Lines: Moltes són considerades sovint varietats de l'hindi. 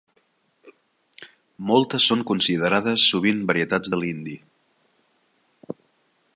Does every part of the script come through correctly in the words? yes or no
yes